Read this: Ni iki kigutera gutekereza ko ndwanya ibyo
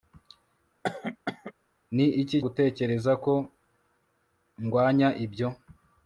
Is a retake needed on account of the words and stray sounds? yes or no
yes